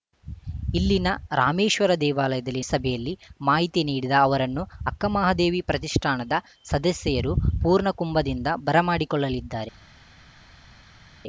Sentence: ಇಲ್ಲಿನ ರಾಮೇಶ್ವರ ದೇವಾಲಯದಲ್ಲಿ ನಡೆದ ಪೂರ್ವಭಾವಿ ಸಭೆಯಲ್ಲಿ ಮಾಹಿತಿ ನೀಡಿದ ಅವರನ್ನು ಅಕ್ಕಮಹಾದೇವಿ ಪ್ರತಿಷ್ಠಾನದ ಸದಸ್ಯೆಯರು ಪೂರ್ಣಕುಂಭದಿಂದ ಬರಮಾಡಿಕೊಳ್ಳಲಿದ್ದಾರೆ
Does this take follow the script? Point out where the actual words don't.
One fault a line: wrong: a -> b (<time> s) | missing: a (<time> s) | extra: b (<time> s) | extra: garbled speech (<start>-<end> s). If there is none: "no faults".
missing: ನಡೆದ ಪೂರ್ವಭಾವಿ (2.6 s)